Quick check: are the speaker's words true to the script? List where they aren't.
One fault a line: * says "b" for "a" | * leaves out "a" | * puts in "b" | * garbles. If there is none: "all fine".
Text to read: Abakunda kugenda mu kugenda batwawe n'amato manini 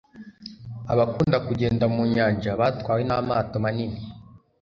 * says "nyanja" for "kugenda"